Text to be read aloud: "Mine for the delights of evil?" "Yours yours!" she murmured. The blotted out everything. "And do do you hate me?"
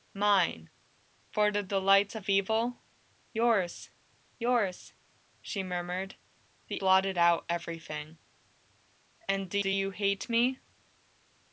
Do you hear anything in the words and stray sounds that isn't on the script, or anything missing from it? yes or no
no